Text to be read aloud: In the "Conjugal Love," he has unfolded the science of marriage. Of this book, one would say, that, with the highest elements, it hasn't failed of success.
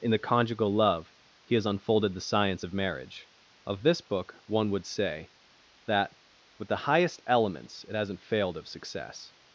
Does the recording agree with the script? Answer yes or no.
yes